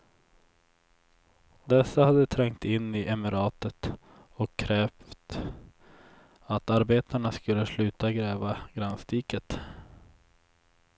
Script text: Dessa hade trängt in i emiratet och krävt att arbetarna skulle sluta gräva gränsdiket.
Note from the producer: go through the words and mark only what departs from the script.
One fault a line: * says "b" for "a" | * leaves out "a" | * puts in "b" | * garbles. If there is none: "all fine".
all fine